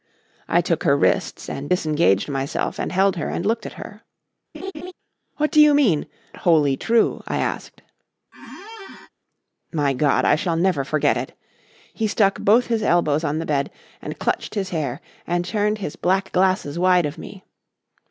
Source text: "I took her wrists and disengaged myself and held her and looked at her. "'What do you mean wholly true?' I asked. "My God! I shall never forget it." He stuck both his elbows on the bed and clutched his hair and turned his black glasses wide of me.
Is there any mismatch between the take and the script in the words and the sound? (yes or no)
yes